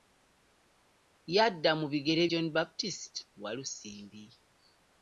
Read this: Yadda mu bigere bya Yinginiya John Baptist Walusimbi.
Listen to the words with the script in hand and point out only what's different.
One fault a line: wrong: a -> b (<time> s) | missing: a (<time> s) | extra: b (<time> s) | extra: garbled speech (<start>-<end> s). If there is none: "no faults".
missing: bya Yinginiya (2.2 s)